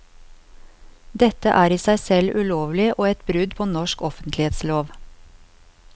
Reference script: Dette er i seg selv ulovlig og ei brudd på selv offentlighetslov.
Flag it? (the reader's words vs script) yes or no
yes